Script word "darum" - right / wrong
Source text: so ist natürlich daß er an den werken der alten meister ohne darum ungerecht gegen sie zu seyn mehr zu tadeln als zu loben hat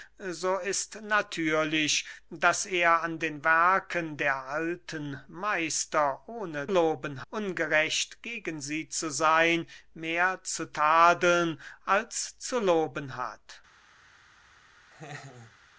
wrong